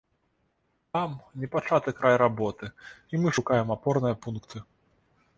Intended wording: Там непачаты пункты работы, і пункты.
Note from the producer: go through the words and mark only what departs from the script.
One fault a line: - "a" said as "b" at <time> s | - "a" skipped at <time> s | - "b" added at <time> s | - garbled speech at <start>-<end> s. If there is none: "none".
- "пункты" said as "край" at 2.0 s
- "мы шукаем апорныя" added at 3.2 s